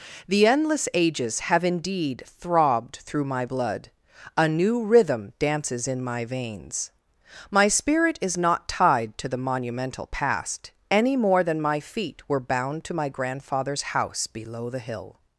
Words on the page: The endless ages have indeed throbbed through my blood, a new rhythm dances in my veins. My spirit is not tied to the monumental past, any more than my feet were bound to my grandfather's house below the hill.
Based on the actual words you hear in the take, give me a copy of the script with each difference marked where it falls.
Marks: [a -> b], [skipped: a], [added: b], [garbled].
The endless ages have indeed throbbed through my blood, a new rhythm dances in my veins. My spirit is not tied to the monumental past, any more than my feet were bound to my grandfather's house below the hill.